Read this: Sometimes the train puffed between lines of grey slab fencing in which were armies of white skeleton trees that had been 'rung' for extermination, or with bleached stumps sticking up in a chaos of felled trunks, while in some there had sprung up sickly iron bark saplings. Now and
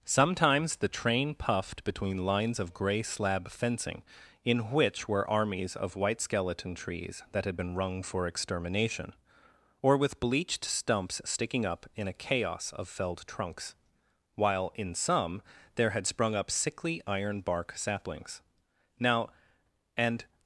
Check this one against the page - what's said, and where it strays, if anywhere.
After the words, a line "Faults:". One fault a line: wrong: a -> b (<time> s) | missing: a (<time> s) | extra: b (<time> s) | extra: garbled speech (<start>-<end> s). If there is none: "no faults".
Sometimes the train puffed between lines of grey slab fencing in which were armies of white skeleton trees that had been 'rung' for extermination, or with bleached stumps sticking up in a chaos of felled trunks, while in some there had sprung up sickly iron bark saplings. Now and
Faults:
no faults